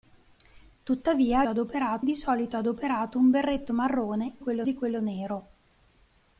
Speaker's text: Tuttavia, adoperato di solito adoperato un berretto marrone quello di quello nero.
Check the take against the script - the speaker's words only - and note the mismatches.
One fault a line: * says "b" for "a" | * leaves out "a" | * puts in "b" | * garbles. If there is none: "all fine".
all fine